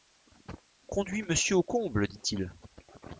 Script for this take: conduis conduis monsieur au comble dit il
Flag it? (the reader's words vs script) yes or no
yes